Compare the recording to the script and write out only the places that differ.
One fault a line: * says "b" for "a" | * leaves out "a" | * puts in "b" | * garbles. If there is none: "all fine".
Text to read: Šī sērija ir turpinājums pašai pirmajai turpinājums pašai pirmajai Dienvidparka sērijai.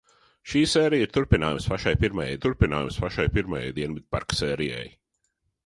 all fine